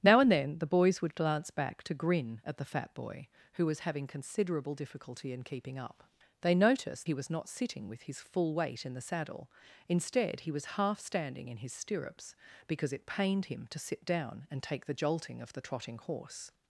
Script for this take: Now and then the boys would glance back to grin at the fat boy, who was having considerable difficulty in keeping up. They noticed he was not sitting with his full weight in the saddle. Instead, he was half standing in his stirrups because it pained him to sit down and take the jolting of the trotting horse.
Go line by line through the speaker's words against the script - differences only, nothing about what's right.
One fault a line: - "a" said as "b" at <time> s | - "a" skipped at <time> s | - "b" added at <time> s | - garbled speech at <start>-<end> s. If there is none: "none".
none